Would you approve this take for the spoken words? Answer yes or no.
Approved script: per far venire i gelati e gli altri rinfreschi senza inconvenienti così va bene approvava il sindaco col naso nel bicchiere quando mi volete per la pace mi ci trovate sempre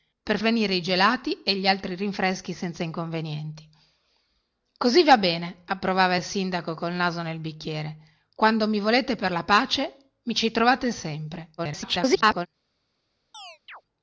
no